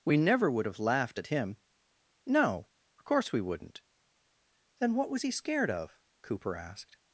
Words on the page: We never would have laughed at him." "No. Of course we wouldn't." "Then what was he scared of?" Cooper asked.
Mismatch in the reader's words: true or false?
false